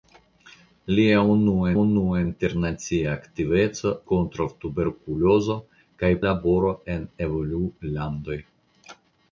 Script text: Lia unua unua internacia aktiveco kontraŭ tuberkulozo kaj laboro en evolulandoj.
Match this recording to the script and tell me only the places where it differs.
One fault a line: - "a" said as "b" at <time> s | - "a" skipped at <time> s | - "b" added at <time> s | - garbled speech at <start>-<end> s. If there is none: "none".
none